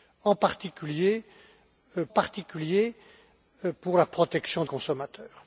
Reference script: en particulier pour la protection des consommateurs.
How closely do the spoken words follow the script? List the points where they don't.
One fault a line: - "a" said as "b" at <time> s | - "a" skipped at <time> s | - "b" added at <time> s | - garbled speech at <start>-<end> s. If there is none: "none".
- "particulier" added at 2.1 s
- "des" skipped at 4.6 s